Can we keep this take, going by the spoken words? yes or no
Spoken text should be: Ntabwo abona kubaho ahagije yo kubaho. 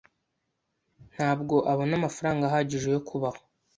no